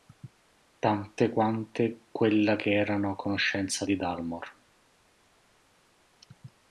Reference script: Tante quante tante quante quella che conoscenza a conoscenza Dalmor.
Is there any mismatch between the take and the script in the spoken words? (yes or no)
yes